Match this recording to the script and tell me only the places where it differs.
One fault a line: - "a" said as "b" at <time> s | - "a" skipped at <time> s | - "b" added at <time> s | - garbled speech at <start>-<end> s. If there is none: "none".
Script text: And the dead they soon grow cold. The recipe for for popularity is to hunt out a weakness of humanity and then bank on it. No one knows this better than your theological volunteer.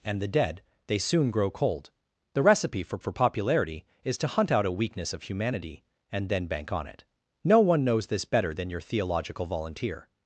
none